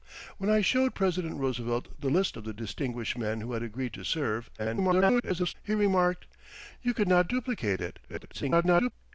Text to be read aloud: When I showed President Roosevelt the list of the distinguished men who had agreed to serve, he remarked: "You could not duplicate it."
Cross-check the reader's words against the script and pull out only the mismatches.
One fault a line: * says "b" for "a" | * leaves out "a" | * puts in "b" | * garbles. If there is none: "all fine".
* garbles
* garbles